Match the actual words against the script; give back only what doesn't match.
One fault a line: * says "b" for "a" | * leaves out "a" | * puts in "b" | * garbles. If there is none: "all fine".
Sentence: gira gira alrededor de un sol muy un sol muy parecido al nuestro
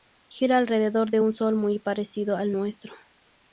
* leaves out "gira"
* leaves out "un sol muy"